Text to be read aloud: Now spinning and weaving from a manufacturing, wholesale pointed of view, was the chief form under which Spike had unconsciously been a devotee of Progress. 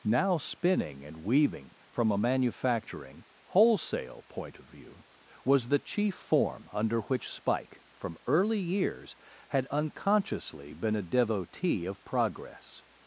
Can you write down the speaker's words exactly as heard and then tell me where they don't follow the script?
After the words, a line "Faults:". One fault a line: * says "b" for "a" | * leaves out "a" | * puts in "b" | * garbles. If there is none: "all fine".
Now spinning and weaving from a manufacturing, wholesale point of view, was the chief form under which Spike from early years had unconsciously been a devotee of Progress.
Faults:
* says "point" for "pointed"
* puts in "from early years"